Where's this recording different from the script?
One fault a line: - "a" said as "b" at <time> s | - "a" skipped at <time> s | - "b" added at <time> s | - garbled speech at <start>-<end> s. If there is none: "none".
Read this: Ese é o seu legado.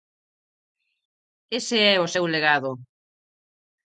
none